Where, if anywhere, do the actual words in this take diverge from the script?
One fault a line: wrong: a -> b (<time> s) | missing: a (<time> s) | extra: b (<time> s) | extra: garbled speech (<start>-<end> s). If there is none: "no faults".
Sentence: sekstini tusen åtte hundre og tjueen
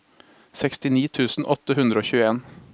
no faults